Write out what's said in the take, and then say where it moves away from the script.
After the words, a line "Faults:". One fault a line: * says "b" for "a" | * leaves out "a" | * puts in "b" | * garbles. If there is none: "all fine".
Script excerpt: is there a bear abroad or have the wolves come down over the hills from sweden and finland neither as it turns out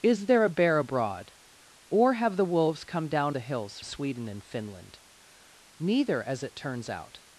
is there a bear abroad or have the wolves come down the hills sweden and finland neither as it turns out
Faults:
* leaves out "over"
* leaves out "from"